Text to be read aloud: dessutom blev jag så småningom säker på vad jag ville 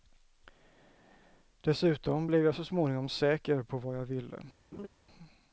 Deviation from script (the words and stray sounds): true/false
true